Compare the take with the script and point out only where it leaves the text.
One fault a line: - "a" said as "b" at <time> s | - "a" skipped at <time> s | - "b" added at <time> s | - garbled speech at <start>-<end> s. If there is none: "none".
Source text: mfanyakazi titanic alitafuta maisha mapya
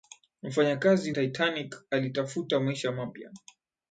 none